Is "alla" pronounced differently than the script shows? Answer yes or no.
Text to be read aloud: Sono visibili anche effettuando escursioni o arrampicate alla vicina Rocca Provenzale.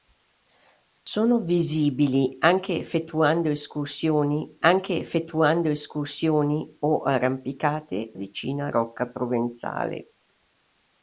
yes